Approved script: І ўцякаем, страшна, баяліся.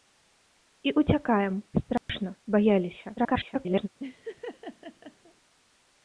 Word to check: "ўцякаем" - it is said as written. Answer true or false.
true